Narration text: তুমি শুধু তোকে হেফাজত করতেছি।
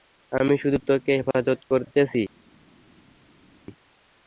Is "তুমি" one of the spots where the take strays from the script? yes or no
yes